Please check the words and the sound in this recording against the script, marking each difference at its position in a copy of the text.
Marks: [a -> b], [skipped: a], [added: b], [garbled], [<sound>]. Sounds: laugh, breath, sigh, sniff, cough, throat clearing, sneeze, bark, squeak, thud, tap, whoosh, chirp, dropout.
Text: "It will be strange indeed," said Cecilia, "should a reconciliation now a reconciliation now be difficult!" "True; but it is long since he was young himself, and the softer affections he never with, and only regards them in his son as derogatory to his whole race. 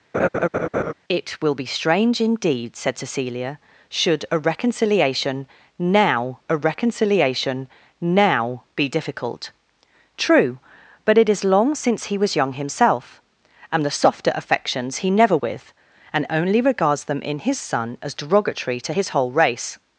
[laugh] "It will be strange indeed," said Cecilia, "should a reconciliation now a reconciliation now be difficult!" "True; but it is long since he was young himself, and the softer affections he never with, and only regards them in his son as derogatory to his whole race.